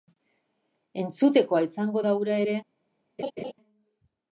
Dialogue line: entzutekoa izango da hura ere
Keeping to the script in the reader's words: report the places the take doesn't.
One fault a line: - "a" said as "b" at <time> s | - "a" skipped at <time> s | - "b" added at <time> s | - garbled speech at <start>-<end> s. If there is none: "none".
none